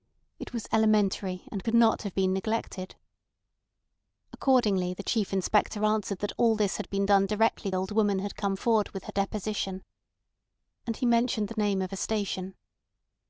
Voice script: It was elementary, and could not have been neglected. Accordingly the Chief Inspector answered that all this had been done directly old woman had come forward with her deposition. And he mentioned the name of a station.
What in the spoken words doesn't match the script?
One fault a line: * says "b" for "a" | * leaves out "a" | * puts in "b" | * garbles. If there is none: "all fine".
all fine